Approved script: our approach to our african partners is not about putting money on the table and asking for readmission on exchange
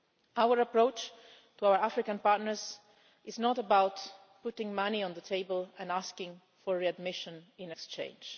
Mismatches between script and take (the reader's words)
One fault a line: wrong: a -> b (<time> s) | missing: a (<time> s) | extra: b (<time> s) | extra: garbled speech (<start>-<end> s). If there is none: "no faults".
wrong: on -> in (7.6 s)